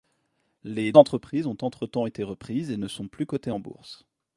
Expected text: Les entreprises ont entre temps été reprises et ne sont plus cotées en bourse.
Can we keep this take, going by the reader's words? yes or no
yes